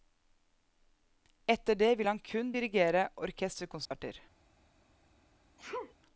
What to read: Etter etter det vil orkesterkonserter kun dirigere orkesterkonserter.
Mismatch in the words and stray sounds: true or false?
true